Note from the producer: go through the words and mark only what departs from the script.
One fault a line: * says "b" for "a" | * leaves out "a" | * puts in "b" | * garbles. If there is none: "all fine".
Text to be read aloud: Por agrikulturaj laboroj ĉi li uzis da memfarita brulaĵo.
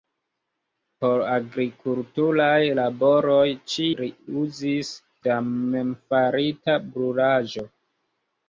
all fine